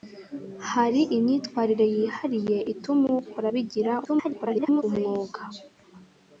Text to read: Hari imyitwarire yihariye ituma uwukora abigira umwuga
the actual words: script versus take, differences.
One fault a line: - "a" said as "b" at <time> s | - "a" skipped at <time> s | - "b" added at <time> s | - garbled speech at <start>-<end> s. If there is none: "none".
- garbled speech at 4.1-4.8 s